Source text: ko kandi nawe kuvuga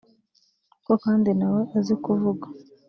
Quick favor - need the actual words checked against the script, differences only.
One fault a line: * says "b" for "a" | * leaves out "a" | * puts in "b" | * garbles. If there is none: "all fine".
* puts in "azi"